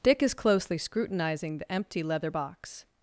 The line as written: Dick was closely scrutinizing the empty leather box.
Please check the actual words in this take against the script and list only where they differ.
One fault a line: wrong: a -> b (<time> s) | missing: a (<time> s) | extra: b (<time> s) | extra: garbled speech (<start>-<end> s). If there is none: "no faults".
wrong: was -> is (0.2 s)